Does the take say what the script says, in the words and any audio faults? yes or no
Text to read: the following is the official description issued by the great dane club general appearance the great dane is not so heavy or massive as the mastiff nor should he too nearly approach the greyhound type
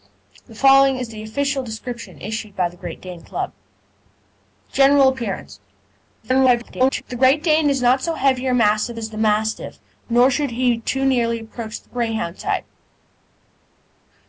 no